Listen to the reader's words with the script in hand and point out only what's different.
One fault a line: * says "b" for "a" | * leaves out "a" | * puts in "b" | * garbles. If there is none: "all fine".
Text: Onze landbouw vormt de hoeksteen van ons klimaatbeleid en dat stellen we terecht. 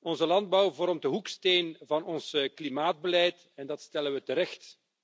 all fine